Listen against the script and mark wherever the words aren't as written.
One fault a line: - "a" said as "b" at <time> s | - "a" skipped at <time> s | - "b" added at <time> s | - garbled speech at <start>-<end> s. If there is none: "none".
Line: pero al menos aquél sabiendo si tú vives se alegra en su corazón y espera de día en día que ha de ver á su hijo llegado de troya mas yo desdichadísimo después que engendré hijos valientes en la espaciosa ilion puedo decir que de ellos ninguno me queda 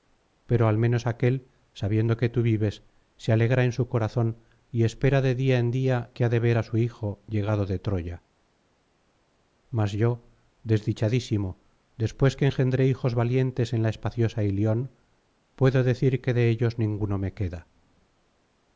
- "si" said as "que" at 2.2 s